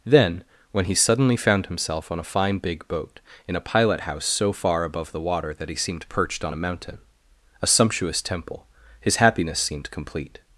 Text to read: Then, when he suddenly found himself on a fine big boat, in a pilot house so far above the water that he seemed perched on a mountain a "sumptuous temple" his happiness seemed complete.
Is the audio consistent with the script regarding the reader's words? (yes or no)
yes